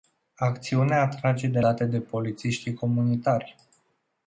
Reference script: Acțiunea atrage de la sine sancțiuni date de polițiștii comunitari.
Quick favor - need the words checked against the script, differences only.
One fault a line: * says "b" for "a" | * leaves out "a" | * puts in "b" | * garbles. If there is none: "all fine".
* leaves out "la sine sancțiuni"